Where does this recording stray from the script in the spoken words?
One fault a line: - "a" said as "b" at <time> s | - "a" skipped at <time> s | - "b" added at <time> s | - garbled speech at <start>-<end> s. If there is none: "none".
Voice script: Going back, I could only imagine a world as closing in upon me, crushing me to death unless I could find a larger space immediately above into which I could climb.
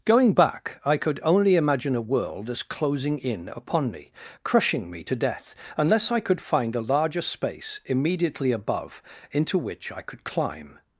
none